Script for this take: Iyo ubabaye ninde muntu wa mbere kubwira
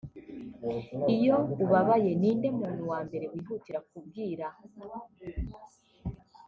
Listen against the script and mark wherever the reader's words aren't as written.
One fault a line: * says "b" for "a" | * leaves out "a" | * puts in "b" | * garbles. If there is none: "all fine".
* puts in "wihutira"